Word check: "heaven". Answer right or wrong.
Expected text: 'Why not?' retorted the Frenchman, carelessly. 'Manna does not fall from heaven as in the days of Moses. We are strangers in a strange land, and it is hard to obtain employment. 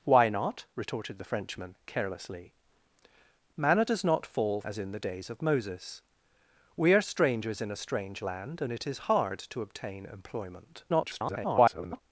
wrong